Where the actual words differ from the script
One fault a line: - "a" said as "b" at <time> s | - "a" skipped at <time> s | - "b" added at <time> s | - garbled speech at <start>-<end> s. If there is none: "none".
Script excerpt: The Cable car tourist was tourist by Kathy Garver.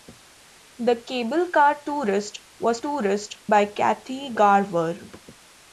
none